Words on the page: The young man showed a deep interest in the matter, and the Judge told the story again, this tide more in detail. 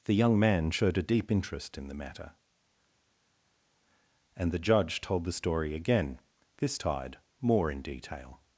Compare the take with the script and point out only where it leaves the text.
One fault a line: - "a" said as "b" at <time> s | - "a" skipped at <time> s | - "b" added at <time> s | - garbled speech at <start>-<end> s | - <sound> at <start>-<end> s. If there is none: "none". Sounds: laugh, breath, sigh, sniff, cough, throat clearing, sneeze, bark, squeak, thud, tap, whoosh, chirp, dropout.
none